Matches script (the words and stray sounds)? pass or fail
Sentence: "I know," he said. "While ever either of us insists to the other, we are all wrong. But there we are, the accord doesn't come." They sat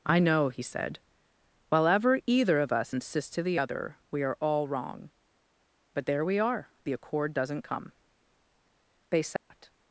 fail